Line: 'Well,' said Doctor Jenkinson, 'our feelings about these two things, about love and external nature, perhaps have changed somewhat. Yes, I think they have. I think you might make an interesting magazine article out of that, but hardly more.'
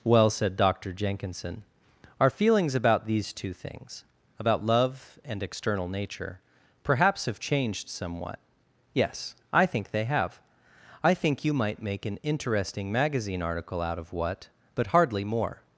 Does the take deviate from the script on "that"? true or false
true